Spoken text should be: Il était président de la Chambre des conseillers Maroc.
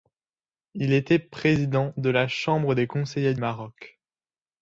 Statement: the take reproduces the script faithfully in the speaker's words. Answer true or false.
true